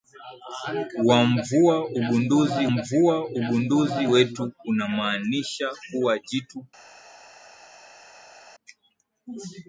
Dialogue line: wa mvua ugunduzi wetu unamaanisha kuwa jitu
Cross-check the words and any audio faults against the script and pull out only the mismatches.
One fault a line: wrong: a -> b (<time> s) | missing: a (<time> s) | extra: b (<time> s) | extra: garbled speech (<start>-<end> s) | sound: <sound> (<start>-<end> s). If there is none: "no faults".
extra: mvua ugunduzi (2.6 s)